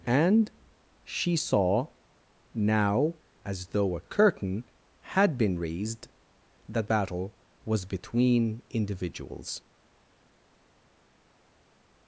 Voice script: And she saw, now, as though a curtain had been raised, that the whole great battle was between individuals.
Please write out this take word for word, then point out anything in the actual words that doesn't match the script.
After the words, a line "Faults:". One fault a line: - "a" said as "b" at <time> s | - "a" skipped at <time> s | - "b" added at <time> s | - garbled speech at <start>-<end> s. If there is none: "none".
And she saw, now, as though a curtain had been raised, that battle was between individuals.
Faults:
- "the whole great" skipped at 6.9 s